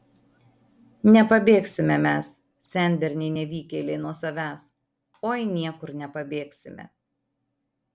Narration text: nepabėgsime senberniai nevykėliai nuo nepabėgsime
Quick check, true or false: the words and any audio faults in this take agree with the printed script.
false